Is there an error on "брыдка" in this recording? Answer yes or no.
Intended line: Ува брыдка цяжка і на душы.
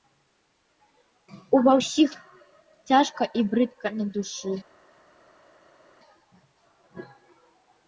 yes